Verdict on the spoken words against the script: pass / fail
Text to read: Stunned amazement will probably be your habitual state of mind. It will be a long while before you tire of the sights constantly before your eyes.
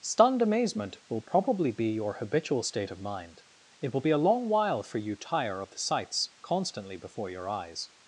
fail